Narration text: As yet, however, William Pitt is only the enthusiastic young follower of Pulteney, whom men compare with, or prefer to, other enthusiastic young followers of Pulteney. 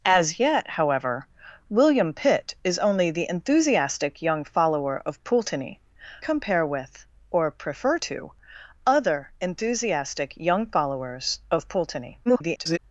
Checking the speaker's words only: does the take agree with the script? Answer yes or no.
no